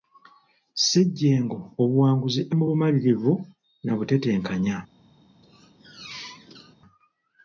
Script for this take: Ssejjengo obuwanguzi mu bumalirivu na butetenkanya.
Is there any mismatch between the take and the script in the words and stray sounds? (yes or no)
yes